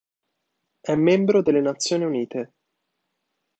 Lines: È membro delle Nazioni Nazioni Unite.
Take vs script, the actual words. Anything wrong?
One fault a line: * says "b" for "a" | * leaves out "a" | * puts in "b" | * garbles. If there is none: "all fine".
* leaves out "Nazioni"